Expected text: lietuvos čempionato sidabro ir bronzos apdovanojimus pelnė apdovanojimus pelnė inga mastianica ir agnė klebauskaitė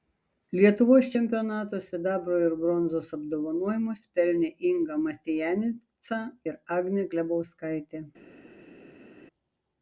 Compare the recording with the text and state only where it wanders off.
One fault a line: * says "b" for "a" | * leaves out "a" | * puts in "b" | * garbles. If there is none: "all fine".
* leaves out "apdovanojimus pelnė"